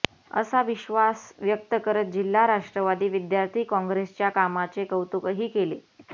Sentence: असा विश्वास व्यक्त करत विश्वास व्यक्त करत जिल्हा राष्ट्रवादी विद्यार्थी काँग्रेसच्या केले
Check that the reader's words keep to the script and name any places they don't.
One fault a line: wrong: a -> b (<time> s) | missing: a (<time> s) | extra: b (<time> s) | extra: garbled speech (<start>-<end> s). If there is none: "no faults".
missing: विश्वास व्यक्त करत (2.0 s)
extra: कामाचे कौतुकही (4.3 s)